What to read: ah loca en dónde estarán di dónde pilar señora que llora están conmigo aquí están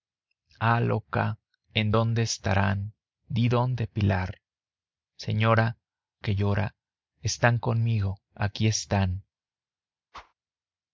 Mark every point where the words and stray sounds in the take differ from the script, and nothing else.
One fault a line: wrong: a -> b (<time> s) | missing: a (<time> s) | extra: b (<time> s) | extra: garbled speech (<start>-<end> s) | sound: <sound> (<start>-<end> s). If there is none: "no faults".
sound: whoosh (10.1-10.3 s)